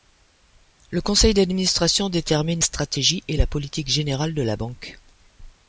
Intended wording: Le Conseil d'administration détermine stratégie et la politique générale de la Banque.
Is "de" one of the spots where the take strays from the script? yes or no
no